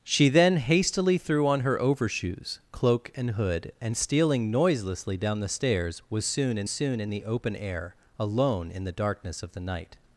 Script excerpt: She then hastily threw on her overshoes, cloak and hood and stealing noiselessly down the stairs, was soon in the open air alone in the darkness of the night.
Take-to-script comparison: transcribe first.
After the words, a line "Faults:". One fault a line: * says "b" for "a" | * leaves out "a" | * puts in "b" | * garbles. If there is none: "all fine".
She then hastily threw on her overshoes, cloak and hood and stealing noiselessly down the stairs, was soon in soon in the open air alone in the darkness of the night.
Faults:
* puts in "soon in"